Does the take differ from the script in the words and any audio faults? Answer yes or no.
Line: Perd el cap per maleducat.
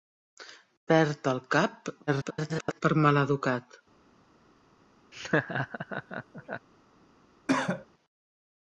yes